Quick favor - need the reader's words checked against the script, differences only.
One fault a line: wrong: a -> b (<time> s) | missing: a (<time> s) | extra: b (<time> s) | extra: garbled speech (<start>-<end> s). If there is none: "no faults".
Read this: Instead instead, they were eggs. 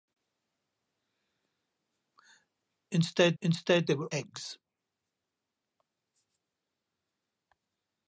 no faults